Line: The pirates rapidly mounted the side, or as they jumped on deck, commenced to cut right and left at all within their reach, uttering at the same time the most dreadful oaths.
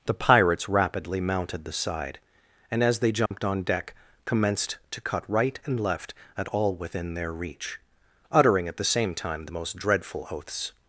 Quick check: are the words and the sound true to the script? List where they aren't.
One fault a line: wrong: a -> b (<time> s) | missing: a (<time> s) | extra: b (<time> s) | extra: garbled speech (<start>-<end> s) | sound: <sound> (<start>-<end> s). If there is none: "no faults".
wrong: or -> and (2.7 s)
sound: dropout (3.3-3.3 s)